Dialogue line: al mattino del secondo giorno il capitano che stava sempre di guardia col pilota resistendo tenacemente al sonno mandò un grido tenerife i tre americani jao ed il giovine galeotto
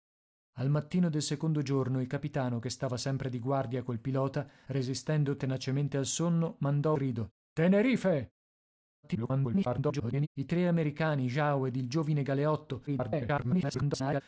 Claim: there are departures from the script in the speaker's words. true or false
true